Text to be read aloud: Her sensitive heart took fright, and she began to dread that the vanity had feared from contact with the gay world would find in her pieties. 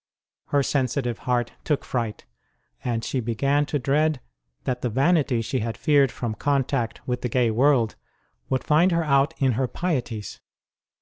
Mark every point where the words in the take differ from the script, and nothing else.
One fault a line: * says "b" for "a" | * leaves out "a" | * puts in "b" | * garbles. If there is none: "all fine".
* puts in "she"
* puts in "her out"